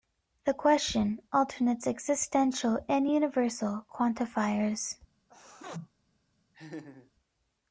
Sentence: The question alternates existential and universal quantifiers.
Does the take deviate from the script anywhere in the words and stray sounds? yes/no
yes